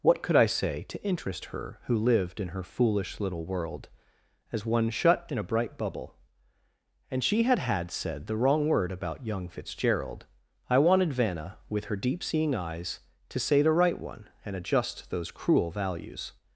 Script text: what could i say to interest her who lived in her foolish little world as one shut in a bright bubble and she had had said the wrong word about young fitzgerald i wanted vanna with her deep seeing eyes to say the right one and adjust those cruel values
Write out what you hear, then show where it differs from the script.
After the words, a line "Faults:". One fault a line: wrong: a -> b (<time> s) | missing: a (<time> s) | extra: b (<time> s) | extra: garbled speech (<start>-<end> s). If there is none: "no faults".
what could i say to interest her who lived in her foolish little world as one shut in a bright bubble and she had had said the wrong word about young fitzgerald i wanted vanna with her deep seeing eyes to say the right one and adjust those cruel values
Faults:
no faults